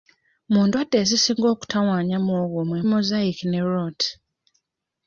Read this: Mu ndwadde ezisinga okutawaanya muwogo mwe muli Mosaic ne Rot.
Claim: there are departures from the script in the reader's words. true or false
true